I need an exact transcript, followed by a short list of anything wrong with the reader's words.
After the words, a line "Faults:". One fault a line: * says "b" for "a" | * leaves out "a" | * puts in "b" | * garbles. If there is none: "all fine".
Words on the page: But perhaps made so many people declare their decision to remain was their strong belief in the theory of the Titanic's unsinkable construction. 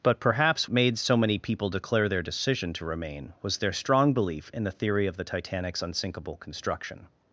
But perhaps made so many people declare their decision to remain was their strong belief in the theory of the Titanic's unsinkable construction.
Faults:
all fine